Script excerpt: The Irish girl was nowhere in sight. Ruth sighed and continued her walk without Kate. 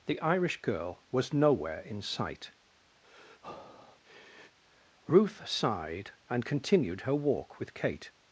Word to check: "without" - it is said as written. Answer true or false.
false